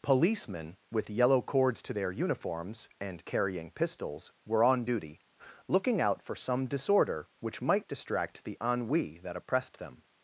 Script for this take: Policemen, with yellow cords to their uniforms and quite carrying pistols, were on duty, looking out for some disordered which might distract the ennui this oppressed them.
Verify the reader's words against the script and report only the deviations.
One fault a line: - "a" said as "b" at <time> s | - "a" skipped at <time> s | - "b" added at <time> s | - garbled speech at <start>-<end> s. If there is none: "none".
- "quite" skipped at 3.3 s
- "disordered" said as "disorder" at 6.7 s
- "this" said as "that" at 9.2 s